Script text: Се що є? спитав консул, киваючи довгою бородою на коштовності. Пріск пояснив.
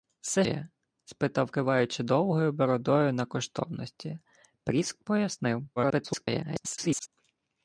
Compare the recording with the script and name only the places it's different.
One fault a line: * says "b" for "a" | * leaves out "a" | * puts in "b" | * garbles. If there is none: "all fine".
* leaves out "що"
* leaves out "консул"
* garbles